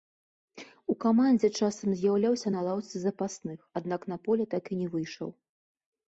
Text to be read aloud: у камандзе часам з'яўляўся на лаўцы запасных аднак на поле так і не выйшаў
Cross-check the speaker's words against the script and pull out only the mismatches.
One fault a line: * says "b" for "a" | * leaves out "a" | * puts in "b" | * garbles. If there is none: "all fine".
all fine